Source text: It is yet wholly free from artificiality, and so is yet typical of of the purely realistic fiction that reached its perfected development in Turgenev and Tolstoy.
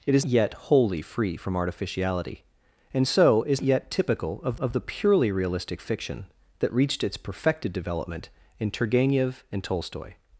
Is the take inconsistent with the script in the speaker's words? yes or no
no